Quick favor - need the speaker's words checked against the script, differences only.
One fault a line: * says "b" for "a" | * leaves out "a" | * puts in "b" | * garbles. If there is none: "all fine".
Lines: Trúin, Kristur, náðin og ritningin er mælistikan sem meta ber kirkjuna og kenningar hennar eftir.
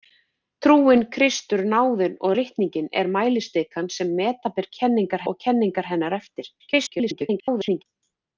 * says "kenningar" for "kirkjuna"
* garbles